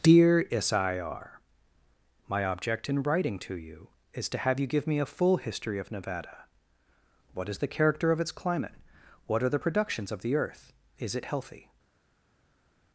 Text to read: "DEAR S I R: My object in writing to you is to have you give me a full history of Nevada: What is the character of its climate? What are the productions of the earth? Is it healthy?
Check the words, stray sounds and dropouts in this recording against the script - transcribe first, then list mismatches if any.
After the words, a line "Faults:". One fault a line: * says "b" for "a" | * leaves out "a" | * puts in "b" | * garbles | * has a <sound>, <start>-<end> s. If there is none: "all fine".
"DEAR S I R: My object in writing to you is to have you give me a full history of Nevada: What is the character of its climate? What are the productions of the earth? Is it healthy?
Faults:
all fine